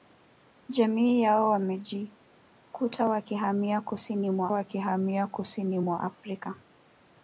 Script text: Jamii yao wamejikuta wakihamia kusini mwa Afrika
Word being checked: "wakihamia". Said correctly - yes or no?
yes